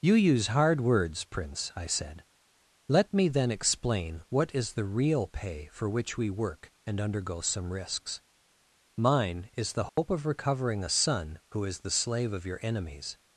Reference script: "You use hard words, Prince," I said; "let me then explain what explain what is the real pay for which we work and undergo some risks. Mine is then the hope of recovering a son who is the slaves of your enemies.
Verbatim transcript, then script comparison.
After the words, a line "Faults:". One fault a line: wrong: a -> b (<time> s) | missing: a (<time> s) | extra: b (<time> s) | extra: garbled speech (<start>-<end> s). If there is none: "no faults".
"You use hard words, Prince," I said; "let me then explain what is the real pay for which we work and undergo some risks. Mine is the hope of recovering a son who is the slave of your enemies.
Faults:
missing: explain what (4.5 s)
missing: then (9.7 s)
wrong: slaves -> slave (11.9 s)